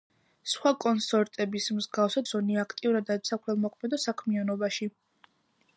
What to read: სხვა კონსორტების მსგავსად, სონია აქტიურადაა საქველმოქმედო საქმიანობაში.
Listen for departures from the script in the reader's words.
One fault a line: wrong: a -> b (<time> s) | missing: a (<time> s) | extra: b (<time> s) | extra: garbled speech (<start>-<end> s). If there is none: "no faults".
no faults